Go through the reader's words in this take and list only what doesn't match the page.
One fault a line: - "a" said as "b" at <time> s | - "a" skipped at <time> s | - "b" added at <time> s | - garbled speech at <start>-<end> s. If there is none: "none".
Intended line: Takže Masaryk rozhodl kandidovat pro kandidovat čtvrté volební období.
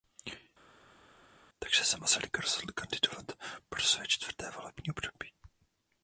- "se" added at 1.8 s
- "kandidovat" said as "své" at 3.8 s